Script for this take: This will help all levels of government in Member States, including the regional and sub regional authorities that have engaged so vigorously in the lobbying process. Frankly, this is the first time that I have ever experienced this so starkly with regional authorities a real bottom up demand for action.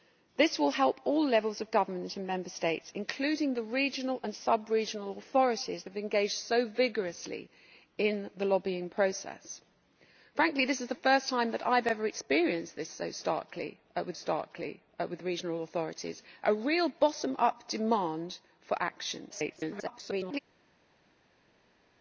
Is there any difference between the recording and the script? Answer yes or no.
yes